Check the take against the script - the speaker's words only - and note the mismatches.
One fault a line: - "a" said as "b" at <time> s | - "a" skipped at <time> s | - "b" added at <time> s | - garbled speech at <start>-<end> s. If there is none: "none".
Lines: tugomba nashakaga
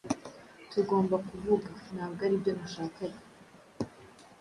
- "kuvuga ntabwo aribyo" added at 1.3 s